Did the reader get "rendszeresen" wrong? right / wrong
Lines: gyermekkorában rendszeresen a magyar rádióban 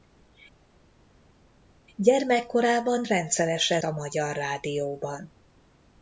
right